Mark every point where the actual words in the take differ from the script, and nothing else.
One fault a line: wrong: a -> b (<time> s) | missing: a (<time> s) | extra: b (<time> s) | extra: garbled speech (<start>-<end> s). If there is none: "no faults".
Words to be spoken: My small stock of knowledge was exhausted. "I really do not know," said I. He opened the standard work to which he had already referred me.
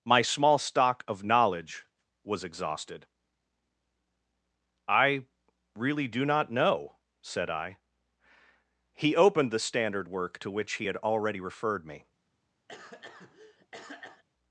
no faults